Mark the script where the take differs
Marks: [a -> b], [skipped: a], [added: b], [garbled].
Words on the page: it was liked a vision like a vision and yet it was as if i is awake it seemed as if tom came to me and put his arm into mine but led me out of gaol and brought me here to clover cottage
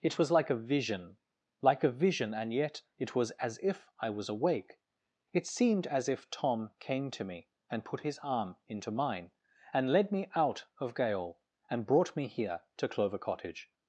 it was [liked -> like] a vision like a vision and yet it was as if i [is -> was] awake it seemed as if tom came to me and put his arm into mine [but -> and] led me out of gaol and brought me here to clover cottage